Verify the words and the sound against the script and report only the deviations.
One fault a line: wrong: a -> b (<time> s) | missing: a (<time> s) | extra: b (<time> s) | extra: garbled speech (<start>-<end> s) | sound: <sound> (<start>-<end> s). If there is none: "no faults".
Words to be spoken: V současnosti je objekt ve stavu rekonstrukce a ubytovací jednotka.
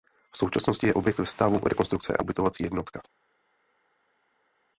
no faults